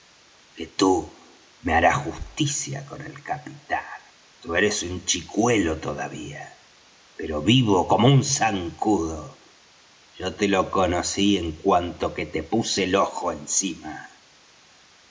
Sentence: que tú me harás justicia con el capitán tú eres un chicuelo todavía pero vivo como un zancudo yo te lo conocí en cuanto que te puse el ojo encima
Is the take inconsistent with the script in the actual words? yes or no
no